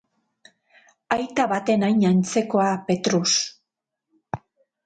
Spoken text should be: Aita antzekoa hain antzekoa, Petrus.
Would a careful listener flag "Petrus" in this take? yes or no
no